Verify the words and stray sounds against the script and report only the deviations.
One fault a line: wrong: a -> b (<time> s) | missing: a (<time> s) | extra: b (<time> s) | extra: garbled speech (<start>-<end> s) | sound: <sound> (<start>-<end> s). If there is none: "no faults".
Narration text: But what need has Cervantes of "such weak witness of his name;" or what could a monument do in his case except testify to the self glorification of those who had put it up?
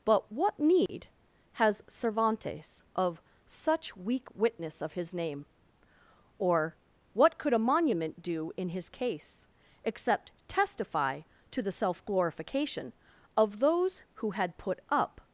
sound: dropout (0.9-0.9 s)
missing: it (14.8 s)